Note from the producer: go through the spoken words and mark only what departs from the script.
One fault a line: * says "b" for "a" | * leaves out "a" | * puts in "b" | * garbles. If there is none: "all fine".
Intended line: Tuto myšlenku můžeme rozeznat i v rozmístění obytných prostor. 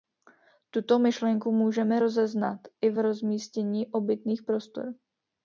all fine